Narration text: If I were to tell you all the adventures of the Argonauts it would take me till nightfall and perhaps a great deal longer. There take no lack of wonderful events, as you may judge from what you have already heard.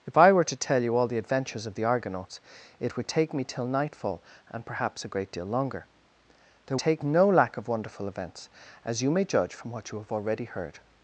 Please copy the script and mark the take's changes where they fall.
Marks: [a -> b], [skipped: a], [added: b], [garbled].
If I were to tell you all the adventures of the Argonauts it would take me till nightfall and perhaps a great deal longer. There take no lack of wonderful events, as you may judge from what you have already heard.